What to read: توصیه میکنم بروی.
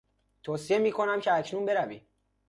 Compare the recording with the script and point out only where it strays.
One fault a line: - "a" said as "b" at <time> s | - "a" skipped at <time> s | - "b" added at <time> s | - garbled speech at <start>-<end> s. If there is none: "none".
- "که اکنون" added at 1.2 s